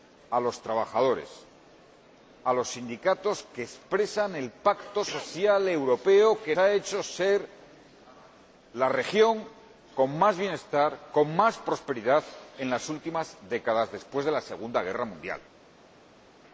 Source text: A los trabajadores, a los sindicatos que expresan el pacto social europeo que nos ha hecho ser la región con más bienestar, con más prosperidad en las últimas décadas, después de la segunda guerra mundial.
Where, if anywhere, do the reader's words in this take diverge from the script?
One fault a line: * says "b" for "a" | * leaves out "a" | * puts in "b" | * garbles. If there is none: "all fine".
* leaves out "nos"